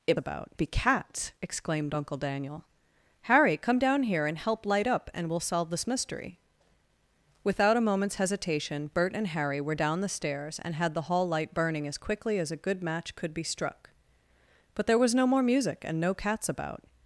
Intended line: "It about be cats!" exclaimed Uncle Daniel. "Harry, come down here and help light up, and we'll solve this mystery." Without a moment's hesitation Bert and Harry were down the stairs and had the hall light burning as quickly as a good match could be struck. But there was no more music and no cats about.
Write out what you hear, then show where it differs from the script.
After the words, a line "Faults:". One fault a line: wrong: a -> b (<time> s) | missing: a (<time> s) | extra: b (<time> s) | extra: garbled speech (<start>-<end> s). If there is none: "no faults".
"It about be cats!" exclaimed Uncle Daniel. "Harry, come down here and help light up, and we'll solve this mystery." Without a moment's hesitation Bert and Harry were down the stairs and had the hall light burning as quickly as a good match could be struck. But there was no more music and no cats about.
Faults:
no faults